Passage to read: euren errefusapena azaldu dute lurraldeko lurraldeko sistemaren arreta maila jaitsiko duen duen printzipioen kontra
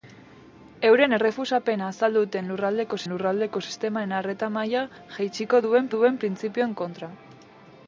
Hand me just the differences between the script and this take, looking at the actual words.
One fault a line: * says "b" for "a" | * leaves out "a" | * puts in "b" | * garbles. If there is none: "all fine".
all fine